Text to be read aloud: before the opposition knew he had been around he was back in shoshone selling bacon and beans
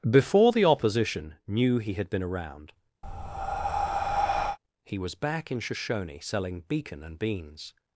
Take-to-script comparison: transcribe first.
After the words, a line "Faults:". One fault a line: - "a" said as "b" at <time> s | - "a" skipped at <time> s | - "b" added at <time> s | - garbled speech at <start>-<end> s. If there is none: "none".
before the opposition knew he had been around he was back in shoshone selling beacon and beans
Faults:
- "bacon" said as "beacon" at 6.7 s